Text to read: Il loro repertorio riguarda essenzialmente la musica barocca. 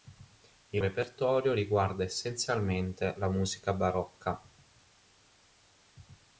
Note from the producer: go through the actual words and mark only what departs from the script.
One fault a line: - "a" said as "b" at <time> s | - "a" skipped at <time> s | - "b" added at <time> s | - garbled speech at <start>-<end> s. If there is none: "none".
- "loro" skipped at 0.8 s